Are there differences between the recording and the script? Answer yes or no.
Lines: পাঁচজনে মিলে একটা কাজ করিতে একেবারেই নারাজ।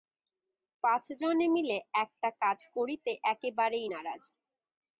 no